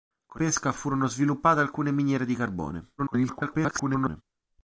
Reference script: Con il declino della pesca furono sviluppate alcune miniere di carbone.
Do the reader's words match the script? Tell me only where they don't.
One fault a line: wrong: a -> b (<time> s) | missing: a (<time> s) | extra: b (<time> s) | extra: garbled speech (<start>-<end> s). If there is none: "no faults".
missing: il declino della (0.4 s)
extra: garbled speech (3.0-4.2 s)